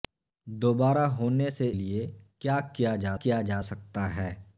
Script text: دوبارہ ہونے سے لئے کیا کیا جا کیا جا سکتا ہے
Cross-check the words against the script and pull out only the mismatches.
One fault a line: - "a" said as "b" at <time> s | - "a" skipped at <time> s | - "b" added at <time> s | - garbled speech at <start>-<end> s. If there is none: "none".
none